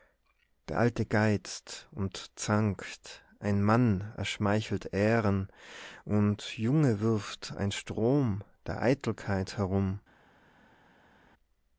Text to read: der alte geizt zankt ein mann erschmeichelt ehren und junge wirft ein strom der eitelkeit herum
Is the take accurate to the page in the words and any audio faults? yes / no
no